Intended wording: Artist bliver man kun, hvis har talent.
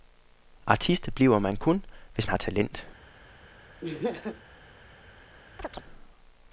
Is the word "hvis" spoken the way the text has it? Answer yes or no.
yes